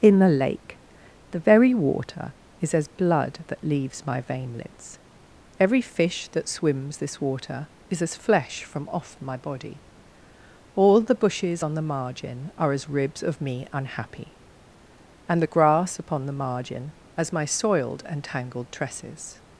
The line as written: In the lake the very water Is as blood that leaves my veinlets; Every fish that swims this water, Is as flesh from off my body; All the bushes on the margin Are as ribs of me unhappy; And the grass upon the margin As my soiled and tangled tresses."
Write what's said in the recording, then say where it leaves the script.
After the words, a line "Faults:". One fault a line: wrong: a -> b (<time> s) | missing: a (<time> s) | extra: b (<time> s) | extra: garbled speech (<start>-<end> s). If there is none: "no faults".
In the lake the very water Is as blood that leaves my veinlets; Every fish that swims this water, Is as flesh from off my body; All the bushes on the margin Are as ribs of me unhappy; And the grass upon the margin As my soiled and tangled tresses."
Faults:
no faults